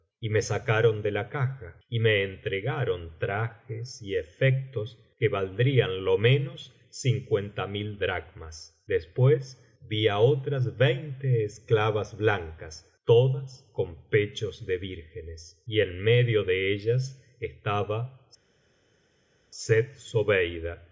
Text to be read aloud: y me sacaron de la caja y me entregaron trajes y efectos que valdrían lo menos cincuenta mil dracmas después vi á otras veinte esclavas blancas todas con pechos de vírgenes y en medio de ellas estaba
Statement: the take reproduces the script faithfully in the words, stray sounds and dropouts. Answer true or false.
true